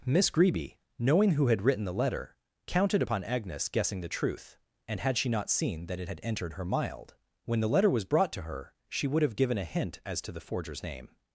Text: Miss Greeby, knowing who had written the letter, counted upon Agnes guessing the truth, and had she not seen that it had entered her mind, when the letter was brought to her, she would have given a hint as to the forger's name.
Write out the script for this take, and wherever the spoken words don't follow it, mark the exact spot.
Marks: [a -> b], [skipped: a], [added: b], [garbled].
Miss Greeby, knowing who had written the letter, counted upon Agnes guessing the truth, and had she not seen that it had entered her [mind, -> mild] when the letter was brought to her, she would have given a hint as to the forger's name.